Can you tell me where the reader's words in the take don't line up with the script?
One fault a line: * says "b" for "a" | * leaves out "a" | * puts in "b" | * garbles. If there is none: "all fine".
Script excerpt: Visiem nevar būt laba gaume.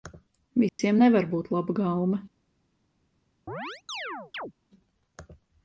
all fine